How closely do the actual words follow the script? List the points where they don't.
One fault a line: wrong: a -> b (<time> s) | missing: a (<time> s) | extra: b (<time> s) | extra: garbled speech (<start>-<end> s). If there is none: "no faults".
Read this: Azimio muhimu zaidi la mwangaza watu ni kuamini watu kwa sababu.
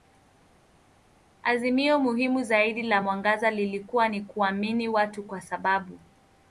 wrong: watu -> lilikuwa (3.5 s)